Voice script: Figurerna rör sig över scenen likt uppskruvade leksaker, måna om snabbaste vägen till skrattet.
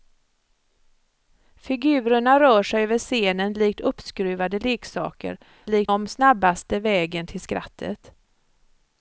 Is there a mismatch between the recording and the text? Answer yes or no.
yes